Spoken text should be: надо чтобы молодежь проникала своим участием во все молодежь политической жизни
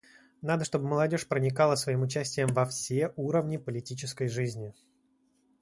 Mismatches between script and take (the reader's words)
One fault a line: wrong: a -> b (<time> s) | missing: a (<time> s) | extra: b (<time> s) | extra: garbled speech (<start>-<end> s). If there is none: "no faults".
wrong: молодежь -> уровни (3.2 s)